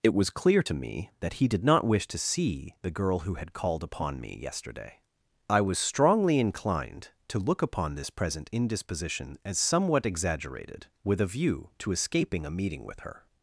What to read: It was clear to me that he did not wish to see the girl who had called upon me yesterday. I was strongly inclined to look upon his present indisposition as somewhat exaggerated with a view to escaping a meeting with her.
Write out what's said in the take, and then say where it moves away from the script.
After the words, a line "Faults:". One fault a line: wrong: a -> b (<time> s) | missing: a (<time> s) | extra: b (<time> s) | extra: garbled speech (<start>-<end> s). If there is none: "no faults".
It was clear to me that he did not wish to see the girl who had called upon me yesterday. I was strongly inclined to look upon this present indisposition as somewhat exaggerated with a view to escaping a meeting with her.
Faults:
wrong: his -> this (7.9 s)